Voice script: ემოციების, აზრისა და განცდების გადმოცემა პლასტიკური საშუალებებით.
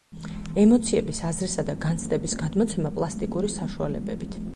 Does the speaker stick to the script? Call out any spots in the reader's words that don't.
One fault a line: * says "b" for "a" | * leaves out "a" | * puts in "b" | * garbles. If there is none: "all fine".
all fine